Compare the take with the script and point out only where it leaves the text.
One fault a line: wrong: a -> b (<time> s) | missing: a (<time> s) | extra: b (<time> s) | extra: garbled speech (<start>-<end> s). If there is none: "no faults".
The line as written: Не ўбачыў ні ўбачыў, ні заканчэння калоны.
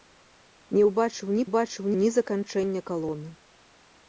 no faults